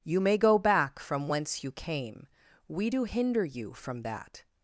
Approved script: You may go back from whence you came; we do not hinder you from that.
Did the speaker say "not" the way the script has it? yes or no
no